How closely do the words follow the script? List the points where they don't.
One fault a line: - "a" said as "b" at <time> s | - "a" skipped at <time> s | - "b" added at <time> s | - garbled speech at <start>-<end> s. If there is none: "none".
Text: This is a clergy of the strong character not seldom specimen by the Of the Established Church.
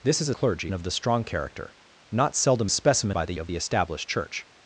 none